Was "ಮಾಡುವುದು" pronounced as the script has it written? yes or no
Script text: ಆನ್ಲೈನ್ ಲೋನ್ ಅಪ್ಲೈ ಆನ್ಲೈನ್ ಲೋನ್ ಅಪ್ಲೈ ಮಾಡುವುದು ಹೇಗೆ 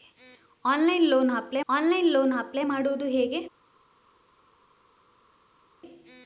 yes